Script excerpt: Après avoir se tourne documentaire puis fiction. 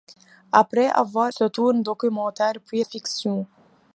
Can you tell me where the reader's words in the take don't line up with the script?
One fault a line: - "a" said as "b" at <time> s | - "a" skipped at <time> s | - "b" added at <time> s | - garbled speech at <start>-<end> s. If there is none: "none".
none